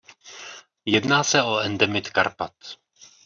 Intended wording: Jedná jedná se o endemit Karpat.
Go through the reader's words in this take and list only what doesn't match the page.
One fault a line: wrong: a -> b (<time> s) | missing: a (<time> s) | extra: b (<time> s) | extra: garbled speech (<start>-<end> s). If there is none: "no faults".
missing: jedná (1.2 s)